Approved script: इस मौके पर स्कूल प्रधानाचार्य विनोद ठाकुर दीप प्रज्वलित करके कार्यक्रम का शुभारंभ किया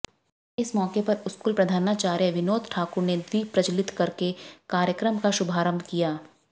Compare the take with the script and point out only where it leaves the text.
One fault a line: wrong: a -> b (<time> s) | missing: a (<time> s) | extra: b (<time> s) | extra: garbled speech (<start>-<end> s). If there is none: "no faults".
extra: ने (3.0 s)